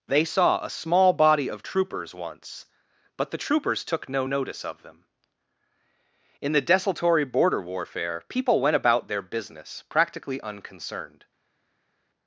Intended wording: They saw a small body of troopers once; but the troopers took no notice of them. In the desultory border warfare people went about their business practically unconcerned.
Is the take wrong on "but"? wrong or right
right